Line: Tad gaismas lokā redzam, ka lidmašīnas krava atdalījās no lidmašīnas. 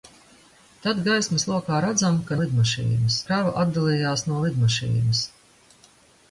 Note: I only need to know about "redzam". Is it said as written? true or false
true